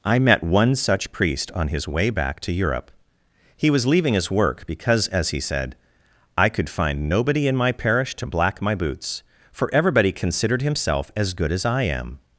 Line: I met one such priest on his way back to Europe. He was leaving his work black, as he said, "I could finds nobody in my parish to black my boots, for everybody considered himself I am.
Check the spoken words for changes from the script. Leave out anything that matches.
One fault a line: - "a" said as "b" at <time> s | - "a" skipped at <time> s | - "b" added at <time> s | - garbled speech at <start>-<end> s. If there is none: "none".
- "black" said as "because" at 4.6 s
- "finds" said as "find" at 6.7 s
- "as good as" added at 11.1 s